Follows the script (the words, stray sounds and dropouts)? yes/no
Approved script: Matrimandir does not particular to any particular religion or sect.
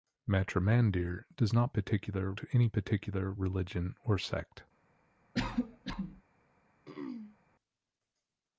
no